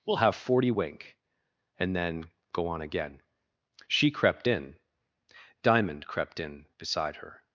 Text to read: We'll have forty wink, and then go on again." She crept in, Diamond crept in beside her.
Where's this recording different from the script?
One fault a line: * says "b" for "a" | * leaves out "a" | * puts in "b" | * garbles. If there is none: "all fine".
all fine